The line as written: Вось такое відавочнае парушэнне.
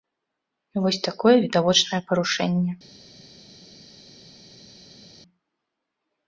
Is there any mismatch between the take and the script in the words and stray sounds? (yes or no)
no